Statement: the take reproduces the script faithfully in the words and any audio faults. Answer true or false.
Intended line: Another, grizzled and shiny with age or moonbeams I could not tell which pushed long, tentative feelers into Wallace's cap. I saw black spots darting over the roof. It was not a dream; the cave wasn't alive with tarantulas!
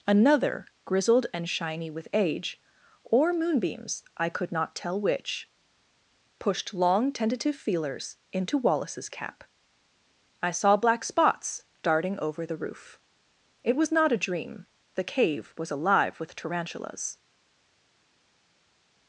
false